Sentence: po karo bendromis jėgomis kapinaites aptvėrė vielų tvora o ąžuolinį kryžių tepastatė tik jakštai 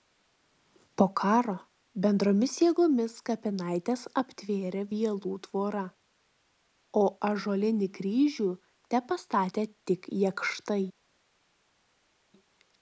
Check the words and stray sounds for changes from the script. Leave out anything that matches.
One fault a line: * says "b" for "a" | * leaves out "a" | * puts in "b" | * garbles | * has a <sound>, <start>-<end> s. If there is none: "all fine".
all fine